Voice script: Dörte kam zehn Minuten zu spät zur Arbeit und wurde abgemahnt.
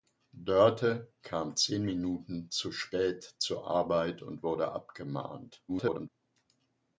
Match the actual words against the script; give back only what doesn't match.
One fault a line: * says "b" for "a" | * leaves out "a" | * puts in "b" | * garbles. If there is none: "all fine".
* garbles